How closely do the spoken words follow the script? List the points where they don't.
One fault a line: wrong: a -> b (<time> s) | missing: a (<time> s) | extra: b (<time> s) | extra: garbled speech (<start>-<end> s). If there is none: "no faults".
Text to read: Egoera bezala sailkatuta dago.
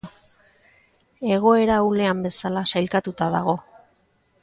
extra: ahulean (1.8 s)